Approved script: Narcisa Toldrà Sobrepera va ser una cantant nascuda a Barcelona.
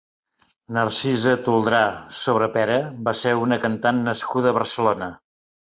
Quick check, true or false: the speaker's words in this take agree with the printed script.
true